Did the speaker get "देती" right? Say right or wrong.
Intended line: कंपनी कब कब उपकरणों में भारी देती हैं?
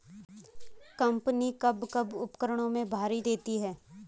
right